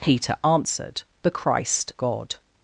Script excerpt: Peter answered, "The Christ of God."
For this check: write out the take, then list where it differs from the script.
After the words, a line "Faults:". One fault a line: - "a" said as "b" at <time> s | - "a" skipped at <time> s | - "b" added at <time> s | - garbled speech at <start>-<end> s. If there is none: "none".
Peter answered, "The Christ God."
Faults:
- "of" skipped at 1.9 s